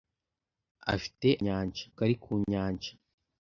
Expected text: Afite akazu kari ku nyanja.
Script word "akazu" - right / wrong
wrong